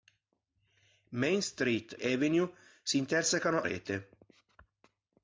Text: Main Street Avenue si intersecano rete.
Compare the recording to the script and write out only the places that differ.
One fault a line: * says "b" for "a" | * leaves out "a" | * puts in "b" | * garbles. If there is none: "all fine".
all fine